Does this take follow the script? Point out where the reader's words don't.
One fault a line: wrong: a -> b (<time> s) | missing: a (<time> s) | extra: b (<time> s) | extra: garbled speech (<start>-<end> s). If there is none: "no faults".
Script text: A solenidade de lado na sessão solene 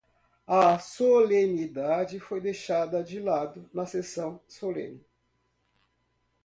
extra: foi deixada (2.2 s)